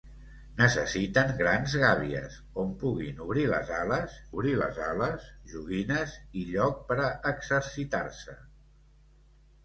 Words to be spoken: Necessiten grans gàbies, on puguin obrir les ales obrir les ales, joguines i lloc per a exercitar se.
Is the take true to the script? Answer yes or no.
yes